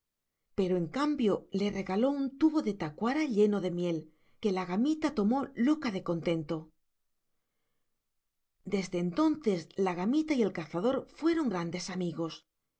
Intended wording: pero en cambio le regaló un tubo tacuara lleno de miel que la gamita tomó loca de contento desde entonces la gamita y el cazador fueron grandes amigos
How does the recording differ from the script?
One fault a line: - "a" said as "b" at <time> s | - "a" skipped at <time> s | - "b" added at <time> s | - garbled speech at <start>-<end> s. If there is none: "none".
- "de" added at 2.6 s